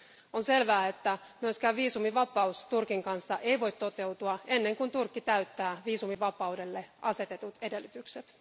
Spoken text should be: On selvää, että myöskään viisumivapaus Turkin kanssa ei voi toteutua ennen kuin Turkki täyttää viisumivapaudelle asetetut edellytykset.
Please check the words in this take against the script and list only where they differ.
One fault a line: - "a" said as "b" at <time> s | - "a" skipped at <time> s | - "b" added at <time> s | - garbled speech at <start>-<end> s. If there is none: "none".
none